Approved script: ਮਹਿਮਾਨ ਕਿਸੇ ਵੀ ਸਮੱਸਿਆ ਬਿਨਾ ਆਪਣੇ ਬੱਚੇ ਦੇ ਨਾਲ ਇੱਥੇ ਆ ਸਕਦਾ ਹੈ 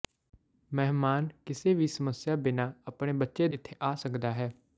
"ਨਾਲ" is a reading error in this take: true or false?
true